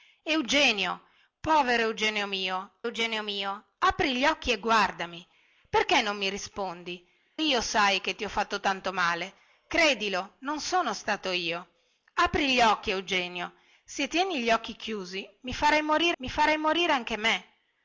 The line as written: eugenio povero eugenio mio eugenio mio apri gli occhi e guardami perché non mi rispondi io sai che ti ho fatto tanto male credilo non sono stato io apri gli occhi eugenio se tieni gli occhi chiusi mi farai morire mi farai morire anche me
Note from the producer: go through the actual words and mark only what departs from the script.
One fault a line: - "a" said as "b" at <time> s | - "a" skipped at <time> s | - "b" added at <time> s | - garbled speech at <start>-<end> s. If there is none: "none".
none